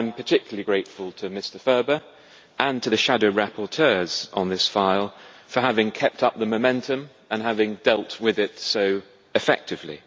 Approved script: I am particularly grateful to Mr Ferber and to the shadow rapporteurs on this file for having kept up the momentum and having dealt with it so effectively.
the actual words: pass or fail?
pass